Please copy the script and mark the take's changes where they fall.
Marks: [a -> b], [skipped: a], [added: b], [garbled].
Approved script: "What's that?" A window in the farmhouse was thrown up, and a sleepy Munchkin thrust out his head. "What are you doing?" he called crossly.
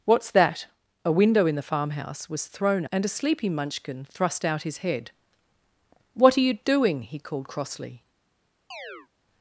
"What's that?" A window in the farmhouse was thrown [skipped: up,] and a sleepy Munchkin thrust out his head. "What are you doing?" he called crossly.